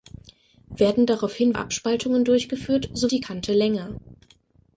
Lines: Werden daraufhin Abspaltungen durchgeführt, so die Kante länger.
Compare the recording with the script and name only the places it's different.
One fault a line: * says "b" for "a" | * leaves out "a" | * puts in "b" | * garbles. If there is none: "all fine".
all fine